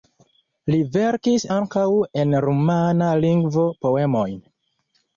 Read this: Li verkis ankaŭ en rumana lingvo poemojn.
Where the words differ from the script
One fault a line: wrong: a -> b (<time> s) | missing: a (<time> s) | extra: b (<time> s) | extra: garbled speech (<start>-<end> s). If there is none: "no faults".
no faults